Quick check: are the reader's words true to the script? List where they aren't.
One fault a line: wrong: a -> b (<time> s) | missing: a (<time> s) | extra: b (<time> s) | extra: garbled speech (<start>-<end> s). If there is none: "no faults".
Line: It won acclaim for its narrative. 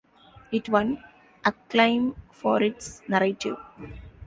no faults